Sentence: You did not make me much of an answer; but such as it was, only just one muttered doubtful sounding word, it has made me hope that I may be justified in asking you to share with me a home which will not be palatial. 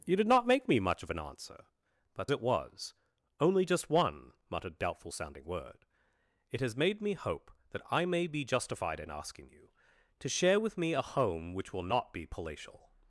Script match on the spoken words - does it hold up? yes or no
no